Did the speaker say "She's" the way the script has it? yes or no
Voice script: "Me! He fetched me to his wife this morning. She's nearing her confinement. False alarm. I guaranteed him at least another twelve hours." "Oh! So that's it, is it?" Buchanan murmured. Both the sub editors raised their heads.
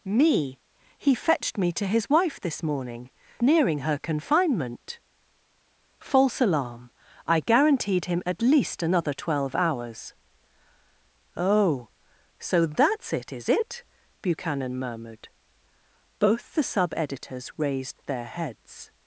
no